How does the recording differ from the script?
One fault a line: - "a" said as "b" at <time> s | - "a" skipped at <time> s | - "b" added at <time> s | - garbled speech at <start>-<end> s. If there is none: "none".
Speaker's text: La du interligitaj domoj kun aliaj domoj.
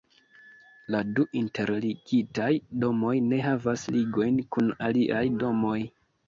- "ne havas ligojn" added at 3.3 s